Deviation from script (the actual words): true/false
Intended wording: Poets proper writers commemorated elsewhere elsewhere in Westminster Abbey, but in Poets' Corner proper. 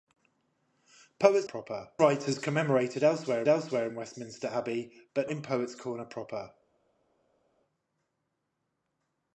false